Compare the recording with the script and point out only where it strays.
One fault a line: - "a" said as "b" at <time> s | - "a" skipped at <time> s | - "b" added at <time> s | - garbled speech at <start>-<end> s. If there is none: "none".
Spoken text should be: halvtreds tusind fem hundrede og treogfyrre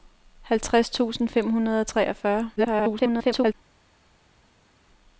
- garbled speech at 2.6-3.5 s